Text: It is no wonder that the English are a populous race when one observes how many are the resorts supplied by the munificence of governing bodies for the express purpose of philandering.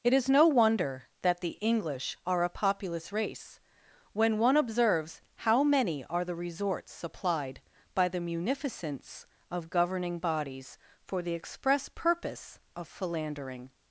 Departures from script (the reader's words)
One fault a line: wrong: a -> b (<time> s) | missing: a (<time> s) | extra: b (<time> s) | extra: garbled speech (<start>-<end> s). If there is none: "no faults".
no faults